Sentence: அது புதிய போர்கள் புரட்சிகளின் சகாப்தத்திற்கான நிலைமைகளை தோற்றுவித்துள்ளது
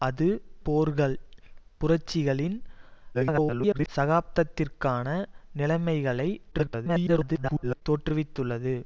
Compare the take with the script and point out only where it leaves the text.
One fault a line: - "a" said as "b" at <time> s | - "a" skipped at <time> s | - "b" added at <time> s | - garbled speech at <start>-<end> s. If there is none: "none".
- "புதிய" skipped at 0.3 s
- garbled speech at 3.1-3.9 s
- garbled speech at 6.5-7.8 s